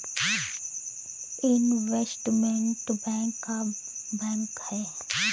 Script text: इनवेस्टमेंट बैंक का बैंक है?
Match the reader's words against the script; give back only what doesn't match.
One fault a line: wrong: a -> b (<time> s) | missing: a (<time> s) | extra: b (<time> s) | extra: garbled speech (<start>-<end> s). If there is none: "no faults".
no faults